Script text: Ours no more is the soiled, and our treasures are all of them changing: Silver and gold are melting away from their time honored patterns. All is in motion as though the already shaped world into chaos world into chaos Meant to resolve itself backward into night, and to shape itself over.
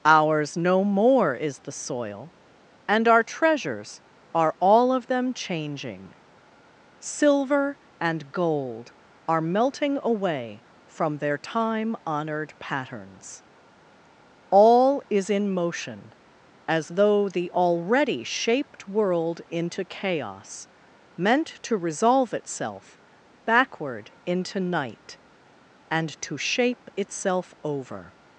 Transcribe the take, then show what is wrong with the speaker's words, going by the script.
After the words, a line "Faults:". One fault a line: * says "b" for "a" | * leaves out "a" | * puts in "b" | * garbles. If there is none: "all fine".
Ours no more is the soil, and our treasures are all of them changing: Silver and gold are melting away from their time honored patterns. All is in motion as though the already shaped world into chaos Meant to resolve itself backward into night, and to shape itself over.
Faults:
* says "soil" for "soiled"
* leaves out "world into chaos"